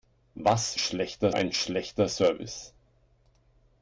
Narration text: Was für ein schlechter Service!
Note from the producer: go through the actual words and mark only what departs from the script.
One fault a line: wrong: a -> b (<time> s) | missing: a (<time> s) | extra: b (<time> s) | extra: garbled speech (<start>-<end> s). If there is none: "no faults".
wrong: für -> schlechter (0.8 s)